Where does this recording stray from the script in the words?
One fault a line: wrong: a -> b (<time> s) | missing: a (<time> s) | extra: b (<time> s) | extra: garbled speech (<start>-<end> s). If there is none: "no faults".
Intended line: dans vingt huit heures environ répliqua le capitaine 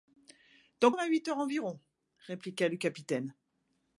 no faults